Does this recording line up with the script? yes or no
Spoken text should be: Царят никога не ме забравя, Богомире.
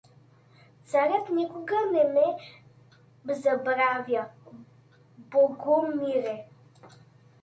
yes